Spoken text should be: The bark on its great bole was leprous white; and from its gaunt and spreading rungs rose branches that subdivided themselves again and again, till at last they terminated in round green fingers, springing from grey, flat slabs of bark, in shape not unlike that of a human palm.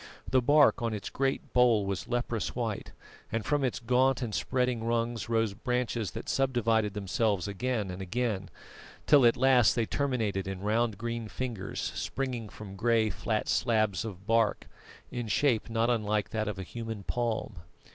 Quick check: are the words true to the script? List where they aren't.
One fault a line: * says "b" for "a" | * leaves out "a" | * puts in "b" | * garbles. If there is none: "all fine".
all fine